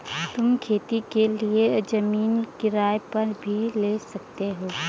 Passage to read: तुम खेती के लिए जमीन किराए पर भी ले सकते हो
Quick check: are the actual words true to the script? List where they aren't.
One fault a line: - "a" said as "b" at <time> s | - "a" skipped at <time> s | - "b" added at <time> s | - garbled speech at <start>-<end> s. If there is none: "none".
none